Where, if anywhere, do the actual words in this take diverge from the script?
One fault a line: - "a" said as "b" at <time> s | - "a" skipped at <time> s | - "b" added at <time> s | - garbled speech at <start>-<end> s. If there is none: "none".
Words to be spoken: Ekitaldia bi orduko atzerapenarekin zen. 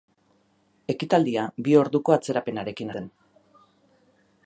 none